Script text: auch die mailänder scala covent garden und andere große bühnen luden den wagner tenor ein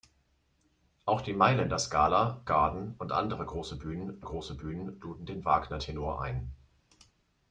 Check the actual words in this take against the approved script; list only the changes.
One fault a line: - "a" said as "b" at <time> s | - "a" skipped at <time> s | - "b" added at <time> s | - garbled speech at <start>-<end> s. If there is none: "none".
- "covent" skipped at 2.4 s
- "große bühnen" added at 4.2 s